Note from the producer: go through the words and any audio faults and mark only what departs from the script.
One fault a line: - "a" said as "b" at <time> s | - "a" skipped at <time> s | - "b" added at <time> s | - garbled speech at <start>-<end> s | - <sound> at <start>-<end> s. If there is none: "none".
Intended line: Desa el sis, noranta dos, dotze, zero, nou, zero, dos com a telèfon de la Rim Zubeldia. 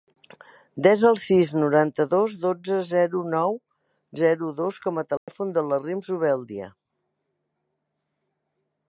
- dropout at 5.2-5.3 s